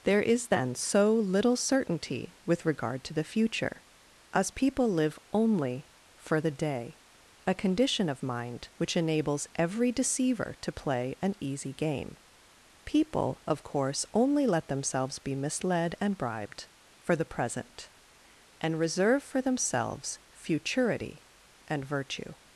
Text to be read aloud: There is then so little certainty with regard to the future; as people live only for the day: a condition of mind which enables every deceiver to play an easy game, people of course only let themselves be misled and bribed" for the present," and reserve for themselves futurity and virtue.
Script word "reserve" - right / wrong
right